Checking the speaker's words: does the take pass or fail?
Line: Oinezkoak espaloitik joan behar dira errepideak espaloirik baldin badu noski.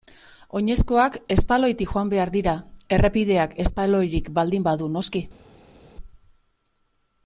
pass